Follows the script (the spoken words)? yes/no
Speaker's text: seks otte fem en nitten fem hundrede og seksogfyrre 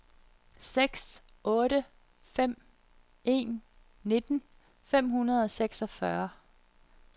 yes